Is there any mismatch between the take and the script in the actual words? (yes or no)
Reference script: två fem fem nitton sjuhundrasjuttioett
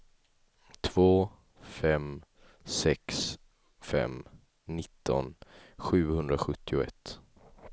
yes